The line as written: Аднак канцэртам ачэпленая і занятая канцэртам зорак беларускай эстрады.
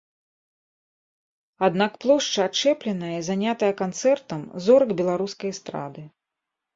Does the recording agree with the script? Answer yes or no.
no